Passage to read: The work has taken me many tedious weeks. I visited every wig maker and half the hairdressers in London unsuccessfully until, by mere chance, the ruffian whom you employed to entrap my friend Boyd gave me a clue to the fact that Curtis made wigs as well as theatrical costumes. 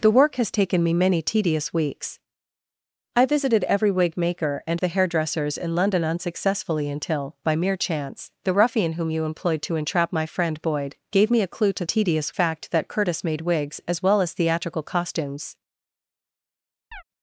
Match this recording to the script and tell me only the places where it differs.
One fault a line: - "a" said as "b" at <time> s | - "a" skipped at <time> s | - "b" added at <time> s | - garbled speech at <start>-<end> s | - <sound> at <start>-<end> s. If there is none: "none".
- "half" skipped at 4.8 s
- "the" said as "tedious" at 11.8 s
- chirp at 16.9-17.0 s